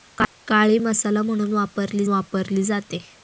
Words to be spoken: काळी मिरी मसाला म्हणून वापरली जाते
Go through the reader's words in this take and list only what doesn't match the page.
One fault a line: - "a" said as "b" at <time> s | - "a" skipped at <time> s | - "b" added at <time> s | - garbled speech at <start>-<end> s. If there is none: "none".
- "मिरी" skipped at 0.8 s
- "वापरली" added at 2.1 s